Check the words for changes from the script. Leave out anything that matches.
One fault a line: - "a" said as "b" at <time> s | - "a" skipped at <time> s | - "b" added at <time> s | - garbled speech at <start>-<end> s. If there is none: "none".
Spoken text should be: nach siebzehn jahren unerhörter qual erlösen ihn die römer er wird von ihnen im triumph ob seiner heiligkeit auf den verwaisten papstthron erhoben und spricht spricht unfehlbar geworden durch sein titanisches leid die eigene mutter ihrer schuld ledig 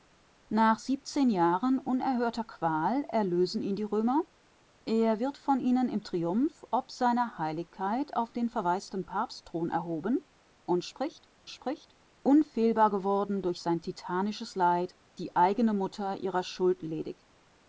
none